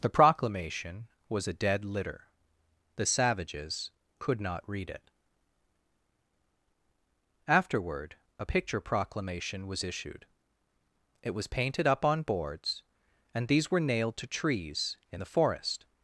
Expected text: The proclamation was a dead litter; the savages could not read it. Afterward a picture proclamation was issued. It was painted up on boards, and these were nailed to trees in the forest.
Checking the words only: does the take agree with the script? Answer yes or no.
yes